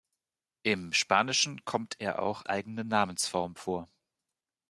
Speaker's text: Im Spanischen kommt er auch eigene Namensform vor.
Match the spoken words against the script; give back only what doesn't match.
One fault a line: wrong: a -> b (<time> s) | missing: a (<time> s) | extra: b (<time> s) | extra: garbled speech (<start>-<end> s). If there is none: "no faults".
no faults